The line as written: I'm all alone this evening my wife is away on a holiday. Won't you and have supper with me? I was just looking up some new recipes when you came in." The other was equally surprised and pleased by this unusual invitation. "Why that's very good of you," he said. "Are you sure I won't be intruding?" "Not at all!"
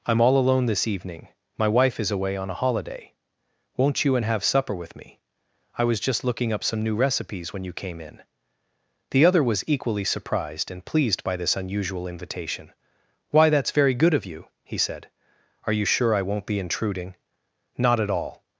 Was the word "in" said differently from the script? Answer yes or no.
no